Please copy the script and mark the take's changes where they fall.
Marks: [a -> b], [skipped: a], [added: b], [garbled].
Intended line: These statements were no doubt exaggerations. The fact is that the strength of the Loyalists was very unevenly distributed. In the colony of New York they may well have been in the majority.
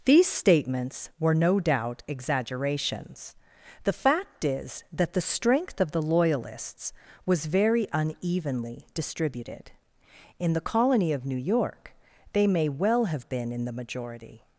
These statements were no doubt exaggerations. The fact is that the strength of the Loyalists was very unevenly distributed. In the colony of New York they may well have been in the majority.